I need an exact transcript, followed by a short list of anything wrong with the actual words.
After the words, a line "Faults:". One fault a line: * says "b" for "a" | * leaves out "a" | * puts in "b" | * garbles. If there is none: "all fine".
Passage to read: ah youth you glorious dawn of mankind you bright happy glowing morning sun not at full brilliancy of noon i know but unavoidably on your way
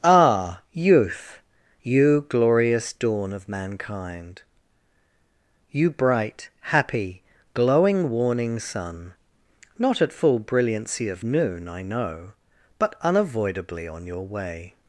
ah youth you glorious dawn of mankind you bright happy glowing warning sun not at full brilliancy of noon i know but unavoidably on your way
Faults:
* says "warning" for "morning"